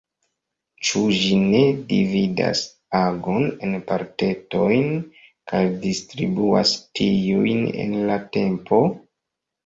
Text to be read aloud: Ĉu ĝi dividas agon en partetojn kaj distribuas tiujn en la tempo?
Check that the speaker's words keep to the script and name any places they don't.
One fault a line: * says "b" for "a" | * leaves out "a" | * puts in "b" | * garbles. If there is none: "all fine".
* puts in "ne"